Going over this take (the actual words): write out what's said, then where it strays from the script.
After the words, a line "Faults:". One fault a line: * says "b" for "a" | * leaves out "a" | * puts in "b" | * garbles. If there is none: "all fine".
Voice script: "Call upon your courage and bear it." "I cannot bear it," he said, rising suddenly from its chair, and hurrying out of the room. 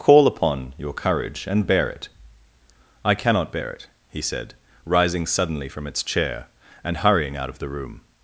"Call upon your courage and bear it." "I cannot bear it," he said, rising suddenly from its chair, and hurrying out of the room.
Faults:
all fine